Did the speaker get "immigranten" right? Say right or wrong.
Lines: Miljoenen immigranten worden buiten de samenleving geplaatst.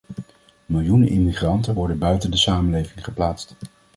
right